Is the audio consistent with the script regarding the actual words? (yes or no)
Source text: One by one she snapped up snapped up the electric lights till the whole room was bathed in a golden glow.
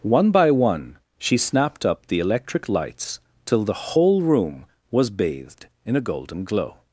no